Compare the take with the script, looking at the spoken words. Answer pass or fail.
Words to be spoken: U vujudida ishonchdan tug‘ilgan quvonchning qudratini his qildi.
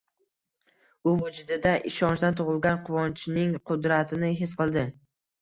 pass